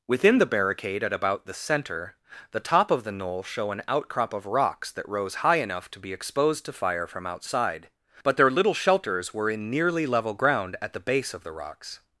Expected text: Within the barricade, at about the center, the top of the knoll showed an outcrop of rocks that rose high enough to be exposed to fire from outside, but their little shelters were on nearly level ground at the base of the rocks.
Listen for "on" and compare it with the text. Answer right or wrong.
wrong